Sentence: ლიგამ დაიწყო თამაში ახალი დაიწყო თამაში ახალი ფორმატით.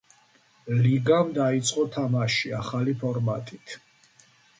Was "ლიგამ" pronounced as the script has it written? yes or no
yes